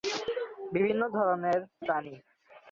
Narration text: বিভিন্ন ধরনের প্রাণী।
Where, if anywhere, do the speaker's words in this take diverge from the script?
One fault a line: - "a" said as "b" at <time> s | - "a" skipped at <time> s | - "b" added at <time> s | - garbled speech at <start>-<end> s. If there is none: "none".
none